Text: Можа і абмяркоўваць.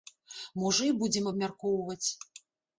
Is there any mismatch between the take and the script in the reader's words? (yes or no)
yes